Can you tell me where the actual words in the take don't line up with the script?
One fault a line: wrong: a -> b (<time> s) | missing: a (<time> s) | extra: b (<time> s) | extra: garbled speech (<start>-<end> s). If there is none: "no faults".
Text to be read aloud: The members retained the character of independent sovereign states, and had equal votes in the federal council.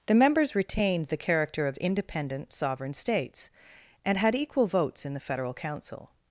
no faults